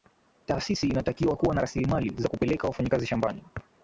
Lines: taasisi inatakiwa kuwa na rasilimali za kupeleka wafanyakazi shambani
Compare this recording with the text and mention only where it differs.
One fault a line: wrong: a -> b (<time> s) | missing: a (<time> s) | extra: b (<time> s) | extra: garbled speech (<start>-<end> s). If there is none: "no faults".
no faults